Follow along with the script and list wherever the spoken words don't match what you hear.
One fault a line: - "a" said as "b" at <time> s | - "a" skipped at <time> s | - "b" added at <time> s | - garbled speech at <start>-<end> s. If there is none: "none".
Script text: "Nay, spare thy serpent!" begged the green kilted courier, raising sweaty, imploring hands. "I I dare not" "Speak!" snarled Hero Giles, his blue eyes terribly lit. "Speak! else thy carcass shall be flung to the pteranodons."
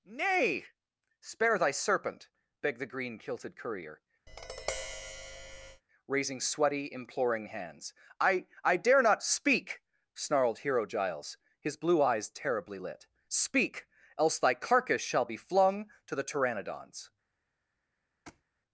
none